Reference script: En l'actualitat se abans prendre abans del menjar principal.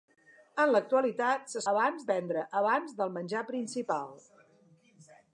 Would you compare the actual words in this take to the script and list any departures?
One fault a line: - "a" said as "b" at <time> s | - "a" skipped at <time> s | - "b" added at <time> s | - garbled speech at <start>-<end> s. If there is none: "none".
none